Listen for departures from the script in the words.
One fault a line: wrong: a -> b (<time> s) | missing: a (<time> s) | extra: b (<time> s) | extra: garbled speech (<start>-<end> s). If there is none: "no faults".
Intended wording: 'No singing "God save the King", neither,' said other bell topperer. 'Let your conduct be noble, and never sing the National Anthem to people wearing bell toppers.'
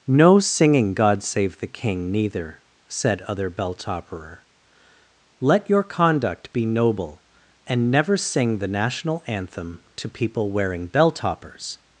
no faults